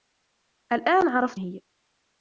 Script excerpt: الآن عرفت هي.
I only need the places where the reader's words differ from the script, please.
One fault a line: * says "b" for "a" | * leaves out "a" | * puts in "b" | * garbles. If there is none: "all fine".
all fine